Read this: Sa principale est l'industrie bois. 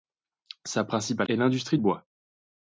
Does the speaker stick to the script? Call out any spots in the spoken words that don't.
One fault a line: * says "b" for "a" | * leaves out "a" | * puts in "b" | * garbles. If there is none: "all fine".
all fine